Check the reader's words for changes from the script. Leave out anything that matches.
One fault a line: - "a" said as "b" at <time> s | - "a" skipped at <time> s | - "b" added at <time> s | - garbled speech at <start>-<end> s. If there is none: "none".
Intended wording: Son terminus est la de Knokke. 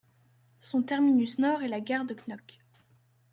- "nord" added at 1.4 s
- "gare" added at 1.8 s